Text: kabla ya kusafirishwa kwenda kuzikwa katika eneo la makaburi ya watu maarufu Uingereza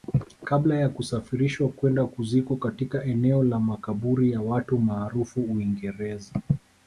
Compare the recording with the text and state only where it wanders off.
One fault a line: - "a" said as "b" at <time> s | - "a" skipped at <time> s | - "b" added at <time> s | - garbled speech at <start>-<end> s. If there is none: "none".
none